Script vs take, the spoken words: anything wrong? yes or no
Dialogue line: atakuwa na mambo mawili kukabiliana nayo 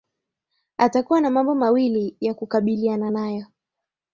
yes